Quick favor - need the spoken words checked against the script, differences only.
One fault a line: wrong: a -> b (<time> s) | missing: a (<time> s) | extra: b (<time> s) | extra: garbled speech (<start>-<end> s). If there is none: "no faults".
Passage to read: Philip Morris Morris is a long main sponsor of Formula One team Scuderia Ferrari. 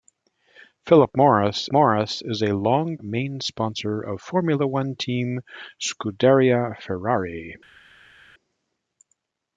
no faults